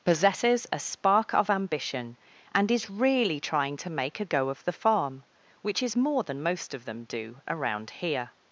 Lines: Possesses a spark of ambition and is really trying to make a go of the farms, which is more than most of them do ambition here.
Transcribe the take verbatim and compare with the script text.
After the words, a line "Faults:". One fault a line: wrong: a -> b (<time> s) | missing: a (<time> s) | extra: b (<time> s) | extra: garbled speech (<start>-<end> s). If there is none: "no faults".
Possesses a spark of ambition and is really trying to make a go of the farm, which is more than most of them do around here.
Faults:
wrong: farms -> farm (4.7 s)
wrong: ambition -> around (7.5 s)